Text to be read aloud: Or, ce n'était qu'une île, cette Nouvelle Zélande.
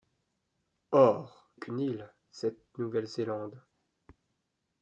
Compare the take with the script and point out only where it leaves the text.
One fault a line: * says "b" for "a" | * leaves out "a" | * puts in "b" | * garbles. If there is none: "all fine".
* leaves out "ce n'était"